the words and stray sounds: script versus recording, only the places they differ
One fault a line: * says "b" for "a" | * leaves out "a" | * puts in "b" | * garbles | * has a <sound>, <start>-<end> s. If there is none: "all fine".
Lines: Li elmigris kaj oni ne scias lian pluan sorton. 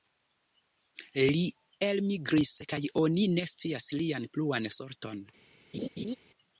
* has a laugh, 5.7-6.2 s